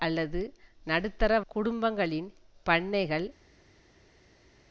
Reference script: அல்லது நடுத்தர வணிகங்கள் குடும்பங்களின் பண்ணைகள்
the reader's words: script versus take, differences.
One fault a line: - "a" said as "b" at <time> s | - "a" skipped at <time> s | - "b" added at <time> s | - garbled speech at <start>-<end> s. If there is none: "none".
- "வணிகங்கள்" skipped at 1.3 s